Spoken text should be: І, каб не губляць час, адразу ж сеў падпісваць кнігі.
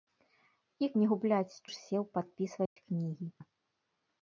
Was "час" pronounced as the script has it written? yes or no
no